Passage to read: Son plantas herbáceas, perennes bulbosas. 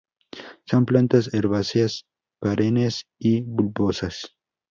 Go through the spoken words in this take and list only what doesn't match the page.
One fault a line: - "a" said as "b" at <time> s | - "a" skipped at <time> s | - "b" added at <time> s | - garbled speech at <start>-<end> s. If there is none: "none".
- "y" added at 3.2 s